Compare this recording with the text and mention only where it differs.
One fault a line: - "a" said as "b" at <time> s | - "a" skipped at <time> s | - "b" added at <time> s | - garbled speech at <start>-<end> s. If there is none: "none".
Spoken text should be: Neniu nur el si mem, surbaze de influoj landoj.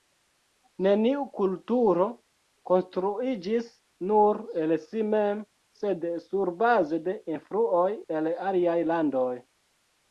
- "kulturo konstruiĝis" added at 1.4 s
- "sed" added at 5.8 s
- "el aliaj" added at 8.2 s